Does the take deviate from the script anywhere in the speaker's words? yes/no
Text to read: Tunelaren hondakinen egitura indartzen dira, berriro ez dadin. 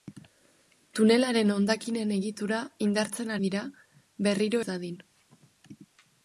no